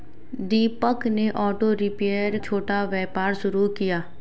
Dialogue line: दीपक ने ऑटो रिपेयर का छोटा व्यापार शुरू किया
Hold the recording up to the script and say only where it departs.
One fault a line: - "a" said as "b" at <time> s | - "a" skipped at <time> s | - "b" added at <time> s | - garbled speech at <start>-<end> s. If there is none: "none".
- "का" skipped at 2.4 s